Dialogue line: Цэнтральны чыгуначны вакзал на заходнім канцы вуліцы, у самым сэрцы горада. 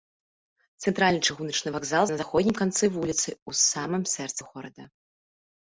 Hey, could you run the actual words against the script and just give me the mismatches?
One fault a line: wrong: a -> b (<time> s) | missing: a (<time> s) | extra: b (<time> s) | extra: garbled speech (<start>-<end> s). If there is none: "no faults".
no faults